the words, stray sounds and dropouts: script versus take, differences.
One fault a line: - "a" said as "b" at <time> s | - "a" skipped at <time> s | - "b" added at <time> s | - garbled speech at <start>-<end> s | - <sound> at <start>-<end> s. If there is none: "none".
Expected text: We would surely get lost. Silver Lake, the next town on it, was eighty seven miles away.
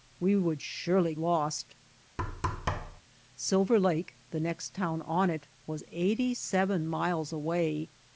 - "get" skipped at 1.1 s
- thud at 2.2-3.0 s